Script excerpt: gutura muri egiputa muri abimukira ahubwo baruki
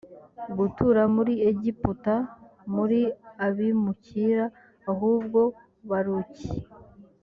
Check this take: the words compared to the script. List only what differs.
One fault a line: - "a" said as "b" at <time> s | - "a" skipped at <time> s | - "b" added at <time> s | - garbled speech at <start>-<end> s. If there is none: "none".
none